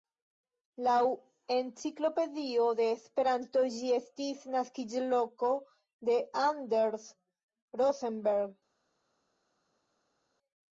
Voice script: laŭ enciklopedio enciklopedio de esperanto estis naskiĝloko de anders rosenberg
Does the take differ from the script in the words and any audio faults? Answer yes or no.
yes